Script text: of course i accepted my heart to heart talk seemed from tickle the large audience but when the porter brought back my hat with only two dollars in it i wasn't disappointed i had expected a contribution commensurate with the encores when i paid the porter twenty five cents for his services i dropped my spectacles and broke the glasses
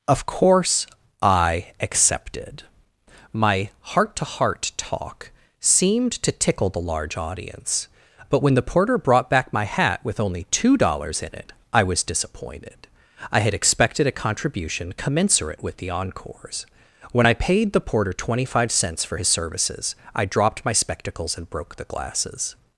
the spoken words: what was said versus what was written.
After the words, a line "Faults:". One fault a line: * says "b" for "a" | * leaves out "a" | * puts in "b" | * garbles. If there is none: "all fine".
of course i accepted my heart to heart talk seemed to tickle the large audience but when the porter brought back my hat with only two dollars in it i was disappointed i had expected a contribution commensurate with the encores when i paid the porter twenty five cents for his services i dropped my spectacles and broke the glasses
Faults:
* says "to" for "from"
* says "was" for "wasn't"